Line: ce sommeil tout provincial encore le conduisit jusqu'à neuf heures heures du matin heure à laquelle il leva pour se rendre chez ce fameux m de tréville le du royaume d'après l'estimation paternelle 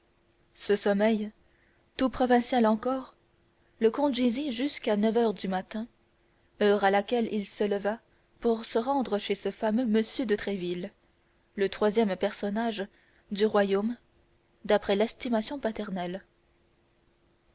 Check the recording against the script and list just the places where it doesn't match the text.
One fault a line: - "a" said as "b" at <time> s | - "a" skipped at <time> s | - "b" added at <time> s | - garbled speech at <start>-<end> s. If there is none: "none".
- "heures" skipped at 5.3 s
- "se" added at 7.5 s
- "troisième personnage" added at 11.7 s